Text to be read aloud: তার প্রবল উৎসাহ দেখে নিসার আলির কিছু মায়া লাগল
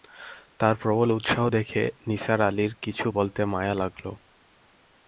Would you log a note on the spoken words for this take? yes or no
yes